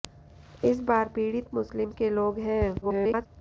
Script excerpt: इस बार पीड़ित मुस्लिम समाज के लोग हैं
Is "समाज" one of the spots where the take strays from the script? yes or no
yes